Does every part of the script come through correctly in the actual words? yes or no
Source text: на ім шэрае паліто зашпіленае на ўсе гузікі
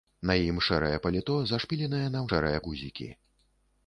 no